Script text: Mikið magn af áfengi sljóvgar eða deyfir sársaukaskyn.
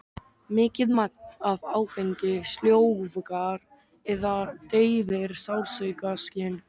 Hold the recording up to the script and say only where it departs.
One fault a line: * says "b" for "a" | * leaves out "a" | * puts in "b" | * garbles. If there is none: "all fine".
all fine